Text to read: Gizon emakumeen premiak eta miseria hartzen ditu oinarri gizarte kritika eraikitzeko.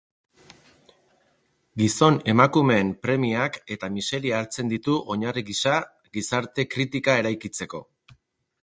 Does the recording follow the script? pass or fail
fail